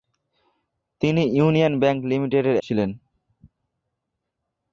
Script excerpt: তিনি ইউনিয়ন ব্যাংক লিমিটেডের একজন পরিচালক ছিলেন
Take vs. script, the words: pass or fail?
fail